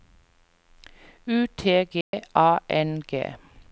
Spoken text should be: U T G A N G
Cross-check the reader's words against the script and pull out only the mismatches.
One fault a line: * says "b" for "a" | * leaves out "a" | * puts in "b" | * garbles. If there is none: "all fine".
all fine